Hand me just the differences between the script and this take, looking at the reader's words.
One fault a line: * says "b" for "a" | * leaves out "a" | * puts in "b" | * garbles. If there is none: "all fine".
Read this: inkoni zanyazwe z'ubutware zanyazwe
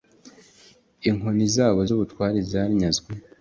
* says "zabo" for "zanyazwe"